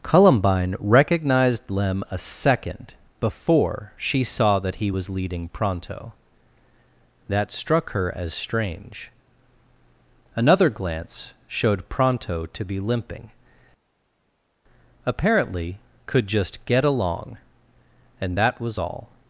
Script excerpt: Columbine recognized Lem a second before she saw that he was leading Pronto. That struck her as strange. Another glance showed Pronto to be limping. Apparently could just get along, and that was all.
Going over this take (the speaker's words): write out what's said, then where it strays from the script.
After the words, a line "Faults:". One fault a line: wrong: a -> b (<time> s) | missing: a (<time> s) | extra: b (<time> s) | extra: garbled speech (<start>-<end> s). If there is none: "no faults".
Columbine recognized Lem a second before she saw that he was leading Pronto. That struck her as strange. Another glance showed Pronto to be limping. Apparently could just get along, and that was all.
Faults:
no faults